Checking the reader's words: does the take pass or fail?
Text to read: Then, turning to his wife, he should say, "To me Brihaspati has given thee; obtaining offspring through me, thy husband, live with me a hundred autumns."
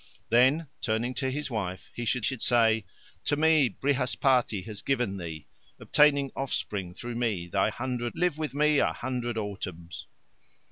fail